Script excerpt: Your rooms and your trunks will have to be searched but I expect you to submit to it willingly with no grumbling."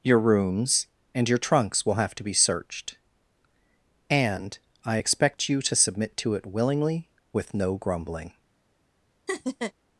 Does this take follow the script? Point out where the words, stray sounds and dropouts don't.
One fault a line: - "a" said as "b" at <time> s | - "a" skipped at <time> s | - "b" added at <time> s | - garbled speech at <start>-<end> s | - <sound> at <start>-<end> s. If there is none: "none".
- "but" said as "and" at 4.1 s
- laugh at 9.3-9.7 s